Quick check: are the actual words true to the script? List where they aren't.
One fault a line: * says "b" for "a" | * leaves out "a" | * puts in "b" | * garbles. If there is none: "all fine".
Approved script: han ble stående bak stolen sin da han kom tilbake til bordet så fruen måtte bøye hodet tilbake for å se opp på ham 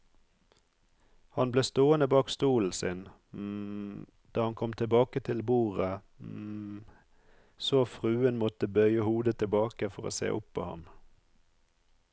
all fine